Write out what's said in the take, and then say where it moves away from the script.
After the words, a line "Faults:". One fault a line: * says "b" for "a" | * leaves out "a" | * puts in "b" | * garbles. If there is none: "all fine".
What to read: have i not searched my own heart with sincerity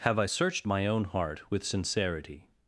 have i searched my own heart with sincerity
Faults:
* leaves out "not"